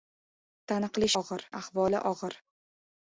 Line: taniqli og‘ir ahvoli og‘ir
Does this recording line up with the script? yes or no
yes